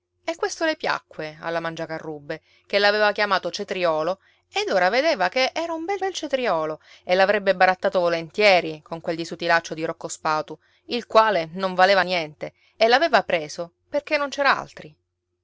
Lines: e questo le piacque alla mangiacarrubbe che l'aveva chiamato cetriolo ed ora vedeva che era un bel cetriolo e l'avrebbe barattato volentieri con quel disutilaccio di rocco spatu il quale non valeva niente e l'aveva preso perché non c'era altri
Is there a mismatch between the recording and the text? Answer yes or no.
yes